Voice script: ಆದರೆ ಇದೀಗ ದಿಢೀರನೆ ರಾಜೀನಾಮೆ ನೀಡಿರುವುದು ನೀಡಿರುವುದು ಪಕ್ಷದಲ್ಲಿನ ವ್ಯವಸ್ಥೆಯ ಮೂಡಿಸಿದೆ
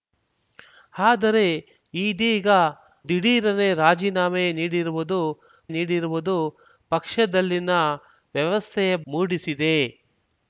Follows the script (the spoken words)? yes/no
yes